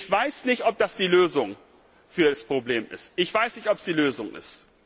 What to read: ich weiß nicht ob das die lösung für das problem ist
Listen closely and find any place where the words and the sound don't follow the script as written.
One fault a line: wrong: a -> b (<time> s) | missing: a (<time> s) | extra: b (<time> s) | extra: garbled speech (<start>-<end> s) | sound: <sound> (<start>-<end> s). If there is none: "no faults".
no faults